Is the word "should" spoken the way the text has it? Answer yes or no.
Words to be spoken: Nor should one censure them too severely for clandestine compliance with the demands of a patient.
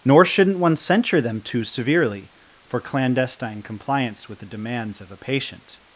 no